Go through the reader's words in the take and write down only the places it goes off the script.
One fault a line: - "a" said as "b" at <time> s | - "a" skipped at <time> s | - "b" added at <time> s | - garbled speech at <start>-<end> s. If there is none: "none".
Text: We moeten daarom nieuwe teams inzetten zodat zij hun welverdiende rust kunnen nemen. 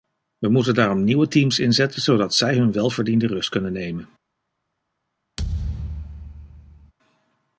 none